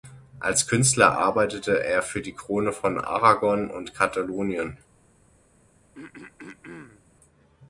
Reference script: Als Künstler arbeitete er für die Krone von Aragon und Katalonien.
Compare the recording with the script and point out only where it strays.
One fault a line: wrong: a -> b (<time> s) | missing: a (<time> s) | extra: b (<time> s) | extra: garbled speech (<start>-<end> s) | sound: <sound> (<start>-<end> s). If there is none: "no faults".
sound: throat clearing (5.9-7.0 s)